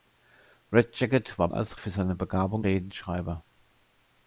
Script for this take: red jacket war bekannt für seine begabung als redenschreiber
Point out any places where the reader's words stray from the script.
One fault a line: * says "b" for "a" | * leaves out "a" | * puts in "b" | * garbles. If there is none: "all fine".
* says "als" for "bekannt"
* leaves out "als"